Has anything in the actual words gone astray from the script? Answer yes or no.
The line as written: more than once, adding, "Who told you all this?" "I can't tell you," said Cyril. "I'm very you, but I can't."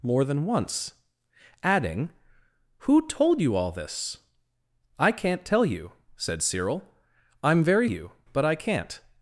no